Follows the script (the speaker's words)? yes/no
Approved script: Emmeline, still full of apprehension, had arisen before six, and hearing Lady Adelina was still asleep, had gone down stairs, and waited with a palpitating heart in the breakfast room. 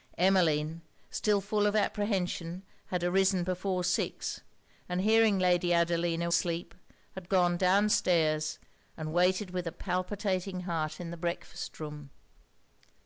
no